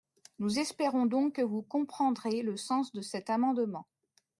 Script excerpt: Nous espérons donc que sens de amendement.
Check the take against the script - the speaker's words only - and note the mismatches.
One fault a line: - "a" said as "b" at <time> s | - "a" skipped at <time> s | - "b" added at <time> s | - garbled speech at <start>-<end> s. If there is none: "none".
- "vous comprendrez le" added at 1.4 s
- "cet" added at 3.0 s